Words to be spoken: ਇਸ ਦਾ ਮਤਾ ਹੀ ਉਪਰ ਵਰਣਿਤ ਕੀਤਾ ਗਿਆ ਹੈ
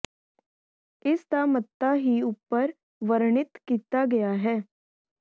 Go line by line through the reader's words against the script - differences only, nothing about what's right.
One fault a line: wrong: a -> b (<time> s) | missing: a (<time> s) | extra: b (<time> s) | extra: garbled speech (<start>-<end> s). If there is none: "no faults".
no faults